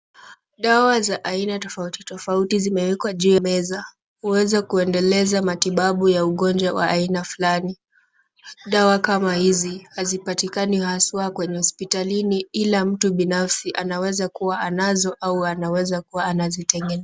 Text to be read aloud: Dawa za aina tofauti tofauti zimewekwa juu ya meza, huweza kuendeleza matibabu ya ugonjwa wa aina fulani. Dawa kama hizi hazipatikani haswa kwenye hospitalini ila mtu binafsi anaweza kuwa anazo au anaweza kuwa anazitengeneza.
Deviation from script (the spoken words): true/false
true